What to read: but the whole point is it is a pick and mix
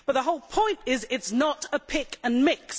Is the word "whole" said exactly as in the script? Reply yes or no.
yes